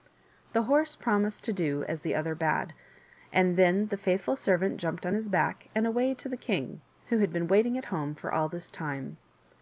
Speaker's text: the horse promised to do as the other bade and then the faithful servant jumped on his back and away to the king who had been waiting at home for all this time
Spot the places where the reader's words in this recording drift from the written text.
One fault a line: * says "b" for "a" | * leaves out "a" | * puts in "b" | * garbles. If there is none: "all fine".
all fine